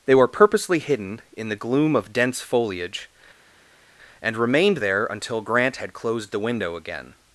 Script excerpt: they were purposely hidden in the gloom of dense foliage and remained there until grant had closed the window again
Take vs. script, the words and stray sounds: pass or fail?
pass